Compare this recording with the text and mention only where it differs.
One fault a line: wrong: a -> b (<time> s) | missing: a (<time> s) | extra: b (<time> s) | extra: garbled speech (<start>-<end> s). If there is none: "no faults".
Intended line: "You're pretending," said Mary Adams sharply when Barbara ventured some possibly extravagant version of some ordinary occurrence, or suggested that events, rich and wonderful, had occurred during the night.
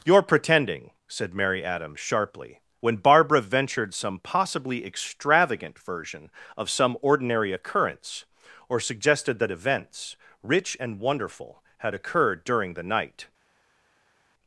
no faults